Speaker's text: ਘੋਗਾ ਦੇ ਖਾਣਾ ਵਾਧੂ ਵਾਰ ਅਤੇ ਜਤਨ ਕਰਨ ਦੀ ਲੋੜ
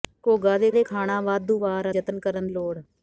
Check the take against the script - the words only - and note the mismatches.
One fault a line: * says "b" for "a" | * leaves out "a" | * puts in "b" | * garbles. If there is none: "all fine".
* puts in "ਦੇ"
* leaves out "ਅਤੇ"
* leaves out "ਦੀ"